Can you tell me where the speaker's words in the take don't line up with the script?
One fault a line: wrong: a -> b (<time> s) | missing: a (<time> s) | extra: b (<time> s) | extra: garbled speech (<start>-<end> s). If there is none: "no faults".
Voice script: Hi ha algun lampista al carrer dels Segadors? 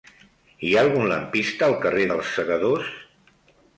no faults